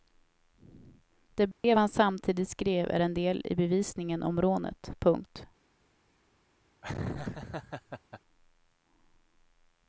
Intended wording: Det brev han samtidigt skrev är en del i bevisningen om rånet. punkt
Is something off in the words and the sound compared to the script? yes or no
yes